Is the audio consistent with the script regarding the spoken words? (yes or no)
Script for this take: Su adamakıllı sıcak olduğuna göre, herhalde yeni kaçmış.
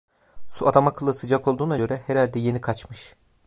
yes